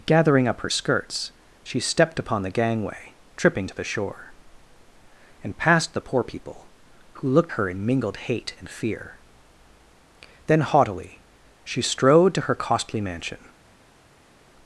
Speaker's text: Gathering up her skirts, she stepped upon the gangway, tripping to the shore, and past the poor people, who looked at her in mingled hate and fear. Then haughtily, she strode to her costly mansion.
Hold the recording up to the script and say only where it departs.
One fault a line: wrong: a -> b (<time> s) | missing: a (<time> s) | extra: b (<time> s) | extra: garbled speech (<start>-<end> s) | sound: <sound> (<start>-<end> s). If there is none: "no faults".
missing: at (7.5 s)